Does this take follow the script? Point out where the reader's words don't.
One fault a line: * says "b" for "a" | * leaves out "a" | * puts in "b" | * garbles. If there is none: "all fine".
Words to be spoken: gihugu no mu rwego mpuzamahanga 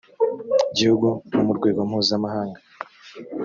all fine